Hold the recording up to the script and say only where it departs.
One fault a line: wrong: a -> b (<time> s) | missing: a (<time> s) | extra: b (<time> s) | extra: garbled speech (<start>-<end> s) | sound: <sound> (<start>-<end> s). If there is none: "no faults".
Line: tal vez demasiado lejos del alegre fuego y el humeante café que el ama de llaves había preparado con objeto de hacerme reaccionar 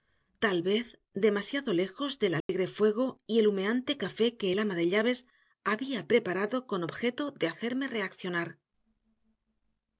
sound: dropout (2.4-2.5 s)